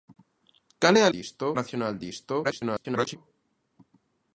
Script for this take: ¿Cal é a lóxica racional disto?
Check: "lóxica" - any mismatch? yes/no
yes